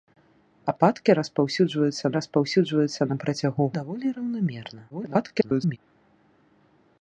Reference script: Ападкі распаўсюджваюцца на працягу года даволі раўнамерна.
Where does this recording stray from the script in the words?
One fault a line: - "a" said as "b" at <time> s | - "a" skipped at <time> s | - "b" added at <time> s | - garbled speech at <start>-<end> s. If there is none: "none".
- "распаўсюджваюцца" added at 2.2 s
- "года" skipped at 3.6 s
- garbled speech at 4.9-5.8 s